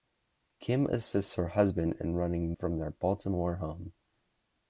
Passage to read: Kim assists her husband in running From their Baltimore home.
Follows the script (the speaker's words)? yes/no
yes